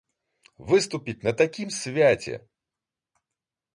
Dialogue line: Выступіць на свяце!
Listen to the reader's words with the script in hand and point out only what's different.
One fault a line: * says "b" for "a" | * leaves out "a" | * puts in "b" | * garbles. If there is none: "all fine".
* puts in "такім"